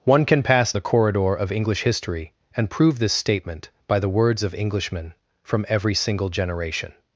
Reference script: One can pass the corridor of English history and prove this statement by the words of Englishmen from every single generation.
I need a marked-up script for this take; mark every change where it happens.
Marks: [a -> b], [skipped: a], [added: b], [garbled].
One can pass the corridor of English history and prove this statement by the words of Englishmen from every single generation.